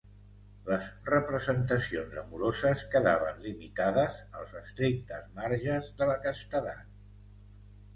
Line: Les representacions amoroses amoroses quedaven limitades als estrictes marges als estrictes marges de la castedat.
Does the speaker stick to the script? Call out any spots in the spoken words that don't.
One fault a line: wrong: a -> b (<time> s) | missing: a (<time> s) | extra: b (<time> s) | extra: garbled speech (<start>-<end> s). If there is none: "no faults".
missing: amoroses (2.9 s)
missing: als estrictes marges (6.0 s)